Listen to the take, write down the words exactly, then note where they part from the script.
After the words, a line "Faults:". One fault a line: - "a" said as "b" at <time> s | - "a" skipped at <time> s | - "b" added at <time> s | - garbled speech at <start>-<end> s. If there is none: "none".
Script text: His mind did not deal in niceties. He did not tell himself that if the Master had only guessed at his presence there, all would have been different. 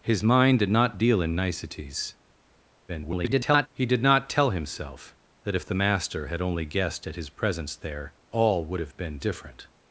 His mind did not deal in niceties. [garbled] He did not tell himself that if the Master had only guessed at his presence there, all would have been different.
Faults:
- garbled speech at 2.9-3.7 s